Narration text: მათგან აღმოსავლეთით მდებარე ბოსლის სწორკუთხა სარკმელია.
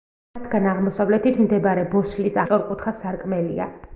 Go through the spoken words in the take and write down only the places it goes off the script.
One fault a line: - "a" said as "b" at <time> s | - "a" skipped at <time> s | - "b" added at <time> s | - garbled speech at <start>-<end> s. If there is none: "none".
none